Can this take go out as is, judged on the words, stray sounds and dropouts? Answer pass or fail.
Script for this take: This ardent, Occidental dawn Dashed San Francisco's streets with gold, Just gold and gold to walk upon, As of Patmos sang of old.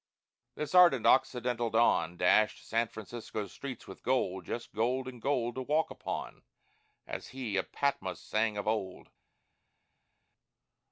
fail